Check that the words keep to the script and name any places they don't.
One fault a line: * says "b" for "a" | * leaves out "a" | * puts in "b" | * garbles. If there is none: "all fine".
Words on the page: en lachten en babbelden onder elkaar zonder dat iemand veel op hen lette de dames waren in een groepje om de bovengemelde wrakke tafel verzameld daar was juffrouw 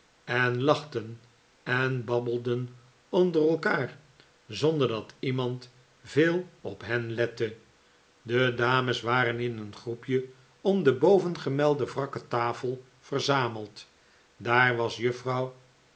all fine